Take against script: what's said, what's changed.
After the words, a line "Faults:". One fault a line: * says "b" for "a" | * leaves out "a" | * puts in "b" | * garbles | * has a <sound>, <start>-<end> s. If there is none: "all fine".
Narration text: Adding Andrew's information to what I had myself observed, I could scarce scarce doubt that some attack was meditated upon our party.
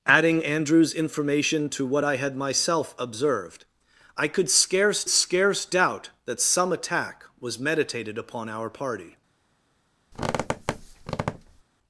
Adding Andrew's information to what I had myself observed, I could scarce scarce doubt that some attack was meditated upon our party.
Faults:
* has a squeak, 10.1-11.6 s